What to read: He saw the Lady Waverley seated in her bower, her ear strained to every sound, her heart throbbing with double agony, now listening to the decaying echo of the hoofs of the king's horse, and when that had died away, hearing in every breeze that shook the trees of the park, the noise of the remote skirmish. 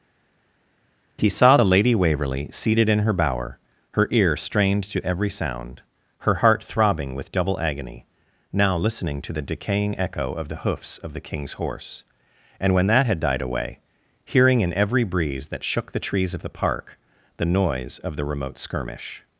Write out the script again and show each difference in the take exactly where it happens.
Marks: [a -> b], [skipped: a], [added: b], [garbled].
He saw the Lady Waverley seated in her bower, her ear strained to every sound, her heart throbbing with double agony, now listening to the decaying echo of the hoofs of the king's horse, and when that had died away, hearing in every breeze that shook the trees of the park, the noise of the remote skirmish.